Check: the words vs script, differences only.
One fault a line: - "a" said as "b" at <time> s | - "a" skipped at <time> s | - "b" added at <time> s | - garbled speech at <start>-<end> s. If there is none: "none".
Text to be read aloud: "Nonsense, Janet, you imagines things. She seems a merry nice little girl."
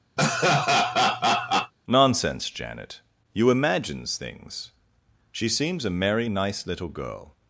none